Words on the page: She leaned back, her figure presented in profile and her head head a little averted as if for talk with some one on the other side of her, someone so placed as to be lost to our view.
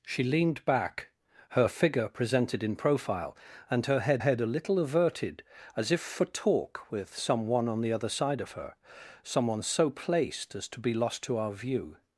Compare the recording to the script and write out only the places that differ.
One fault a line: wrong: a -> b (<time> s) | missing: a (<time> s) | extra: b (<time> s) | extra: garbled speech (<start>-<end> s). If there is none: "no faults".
no faults